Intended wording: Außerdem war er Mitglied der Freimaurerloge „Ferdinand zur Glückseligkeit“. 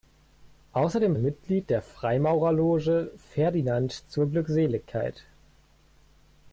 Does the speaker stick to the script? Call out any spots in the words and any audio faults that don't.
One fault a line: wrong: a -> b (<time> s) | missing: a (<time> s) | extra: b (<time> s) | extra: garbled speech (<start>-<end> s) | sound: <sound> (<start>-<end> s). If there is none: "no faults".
missing: war (1.1 s)